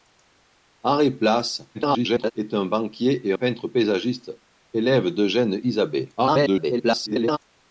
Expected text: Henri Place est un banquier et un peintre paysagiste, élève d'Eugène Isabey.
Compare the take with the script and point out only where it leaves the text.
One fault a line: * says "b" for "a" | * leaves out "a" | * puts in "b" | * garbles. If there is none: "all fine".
* garbles
* leaves out "un"
* garbles